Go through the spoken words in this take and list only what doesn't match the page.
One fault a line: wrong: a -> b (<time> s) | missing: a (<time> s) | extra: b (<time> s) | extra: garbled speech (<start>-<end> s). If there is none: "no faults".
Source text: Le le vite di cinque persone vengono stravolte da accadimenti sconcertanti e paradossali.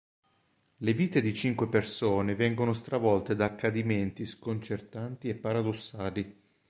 missing: le (0.9 s)